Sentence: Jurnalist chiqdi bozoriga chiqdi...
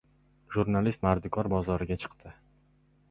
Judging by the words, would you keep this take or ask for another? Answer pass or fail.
fail